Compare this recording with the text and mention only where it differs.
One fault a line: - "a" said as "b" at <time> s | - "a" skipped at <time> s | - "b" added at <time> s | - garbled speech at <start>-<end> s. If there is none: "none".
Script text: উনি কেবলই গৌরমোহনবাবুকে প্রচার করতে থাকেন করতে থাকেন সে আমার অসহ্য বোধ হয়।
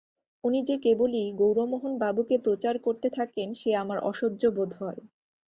- "যে" added at 0.6 s
- "করতে থাকেন" skipped at 3.5 s